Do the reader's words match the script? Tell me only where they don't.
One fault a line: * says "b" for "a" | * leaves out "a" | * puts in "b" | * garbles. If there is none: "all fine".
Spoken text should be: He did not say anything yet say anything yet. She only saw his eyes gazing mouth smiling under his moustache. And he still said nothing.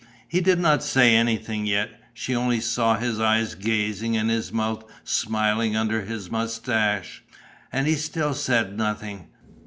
* leaves out "say anything yet"
* puts in "and his"